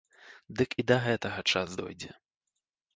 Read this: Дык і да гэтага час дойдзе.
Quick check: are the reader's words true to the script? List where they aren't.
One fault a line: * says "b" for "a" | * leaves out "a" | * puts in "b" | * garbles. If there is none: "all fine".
all fine